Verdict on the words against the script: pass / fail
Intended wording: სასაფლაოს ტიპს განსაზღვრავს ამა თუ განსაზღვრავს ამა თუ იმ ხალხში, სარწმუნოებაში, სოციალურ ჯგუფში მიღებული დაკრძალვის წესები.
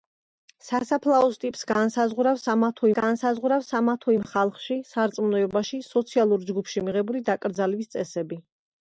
pass